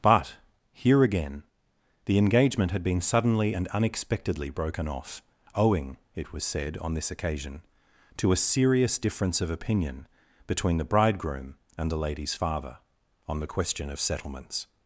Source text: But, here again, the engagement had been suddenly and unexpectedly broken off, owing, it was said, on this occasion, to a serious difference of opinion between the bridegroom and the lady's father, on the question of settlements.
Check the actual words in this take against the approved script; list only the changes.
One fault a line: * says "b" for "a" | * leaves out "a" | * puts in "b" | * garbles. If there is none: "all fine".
all fine